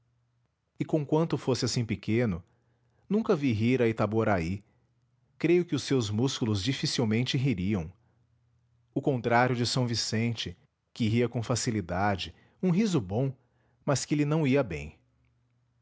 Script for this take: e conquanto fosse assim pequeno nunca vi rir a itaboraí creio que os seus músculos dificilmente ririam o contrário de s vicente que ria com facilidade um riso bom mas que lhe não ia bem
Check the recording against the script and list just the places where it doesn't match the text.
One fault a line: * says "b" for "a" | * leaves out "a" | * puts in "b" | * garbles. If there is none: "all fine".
all fine